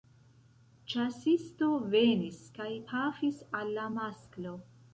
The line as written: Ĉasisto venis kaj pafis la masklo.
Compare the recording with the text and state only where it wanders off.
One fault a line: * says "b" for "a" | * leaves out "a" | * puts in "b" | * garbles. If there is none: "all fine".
* puts in "al"